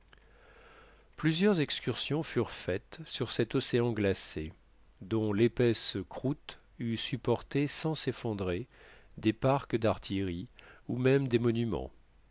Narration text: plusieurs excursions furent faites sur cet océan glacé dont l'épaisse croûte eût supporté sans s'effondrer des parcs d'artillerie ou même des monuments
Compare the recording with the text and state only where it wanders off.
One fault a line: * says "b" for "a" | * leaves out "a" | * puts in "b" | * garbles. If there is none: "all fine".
all fine